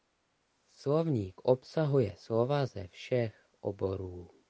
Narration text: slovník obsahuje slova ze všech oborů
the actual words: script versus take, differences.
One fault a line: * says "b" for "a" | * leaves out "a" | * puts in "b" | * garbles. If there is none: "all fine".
all fine